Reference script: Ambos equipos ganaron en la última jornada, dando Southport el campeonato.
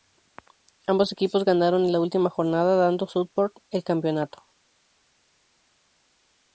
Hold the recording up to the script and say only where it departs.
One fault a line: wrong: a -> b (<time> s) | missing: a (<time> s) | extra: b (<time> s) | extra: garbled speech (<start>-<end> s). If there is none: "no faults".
no faults